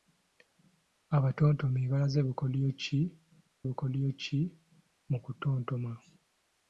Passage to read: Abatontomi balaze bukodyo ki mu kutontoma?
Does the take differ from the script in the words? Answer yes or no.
yes